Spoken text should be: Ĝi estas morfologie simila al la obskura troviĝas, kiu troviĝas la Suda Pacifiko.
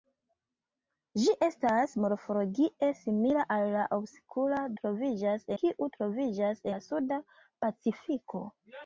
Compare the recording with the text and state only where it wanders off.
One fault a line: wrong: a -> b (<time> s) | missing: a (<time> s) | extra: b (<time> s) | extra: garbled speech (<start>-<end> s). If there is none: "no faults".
no faults